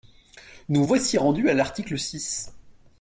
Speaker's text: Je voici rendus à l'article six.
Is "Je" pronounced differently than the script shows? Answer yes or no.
yes